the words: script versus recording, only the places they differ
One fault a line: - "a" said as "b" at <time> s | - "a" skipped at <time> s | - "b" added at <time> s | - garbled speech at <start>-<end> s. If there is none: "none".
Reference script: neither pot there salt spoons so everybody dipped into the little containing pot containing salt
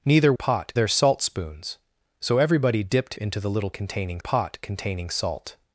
none